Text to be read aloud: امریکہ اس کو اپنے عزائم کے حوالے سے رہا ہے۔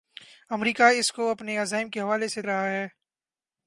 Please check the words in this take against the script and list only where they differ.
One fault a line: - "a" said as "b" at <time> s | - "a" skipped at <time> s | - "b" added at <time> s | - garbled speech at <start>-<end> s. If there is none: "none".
none